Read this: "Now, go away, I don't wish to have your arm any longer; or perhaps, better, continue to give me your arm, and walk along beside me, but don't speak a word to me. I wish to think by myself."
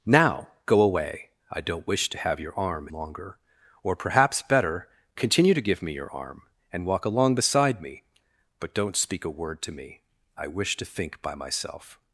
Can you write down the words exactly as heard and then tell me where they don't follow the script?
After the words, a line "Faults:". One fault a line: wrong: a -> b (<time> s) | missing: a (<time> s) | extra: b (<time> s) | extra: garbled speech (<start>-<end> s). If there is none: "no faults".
"Now, go away, I don't wish to have your arm longer; or perhaps, better, continue to give me your arm, and walk along beside me, but don't speak a word to me. I wish to think by myself."
Faults:
missing: any (2.9 s)